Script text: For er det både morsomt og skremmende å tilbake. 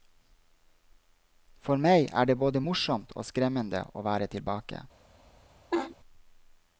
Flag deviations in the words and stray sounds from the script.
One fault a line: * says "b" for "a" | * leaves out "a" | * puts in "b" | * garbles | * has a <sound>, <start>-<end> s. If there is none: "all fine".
* puts in "meg"
* puts in "være"
* has a laugh, 5.7-6.0 s